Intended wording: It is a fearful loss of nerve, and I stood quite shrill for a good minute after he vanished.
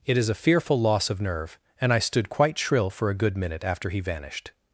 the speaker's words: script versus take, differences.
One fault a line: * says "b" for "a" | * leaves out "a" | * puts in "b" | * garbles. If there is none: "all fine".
all fine